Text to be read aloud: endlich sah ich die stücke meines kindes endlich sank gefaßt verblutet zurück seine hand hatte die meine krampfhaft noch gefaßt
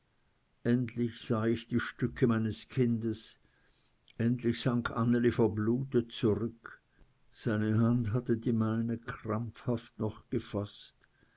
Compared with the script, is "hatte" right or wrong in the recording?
right